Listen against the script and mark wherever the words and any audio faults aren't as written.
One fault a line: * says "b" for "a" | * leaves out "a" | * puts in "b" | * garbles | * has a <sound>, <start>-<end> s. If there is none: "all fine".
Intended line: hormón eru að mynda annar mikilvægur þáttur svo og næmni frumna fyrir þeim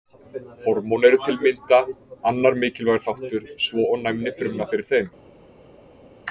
* puts in "til"